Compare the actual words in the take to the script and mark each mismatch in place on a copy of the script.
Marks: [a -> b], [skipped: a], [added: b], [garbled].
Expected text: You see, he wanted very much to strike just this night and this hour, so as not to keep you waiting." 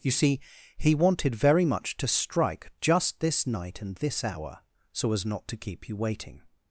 You see, he wanted very much to strike just this night and this hour, so as not to keep you waiting."